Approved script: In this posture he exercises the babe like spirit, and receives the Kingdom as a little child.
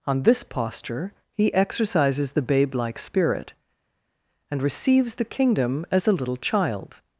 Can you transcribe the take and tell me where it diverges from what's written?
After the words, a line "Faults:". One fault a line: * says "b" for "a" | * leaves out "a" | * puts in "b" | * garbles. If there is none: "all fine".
On this posture he exercises the babe like spirit, and receives the Kingdom as a little child.
Faults:
* says "On" for "In"